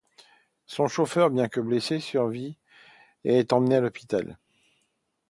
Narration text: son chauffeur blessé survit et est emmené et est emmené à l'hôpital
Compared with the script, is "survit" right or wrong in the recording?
right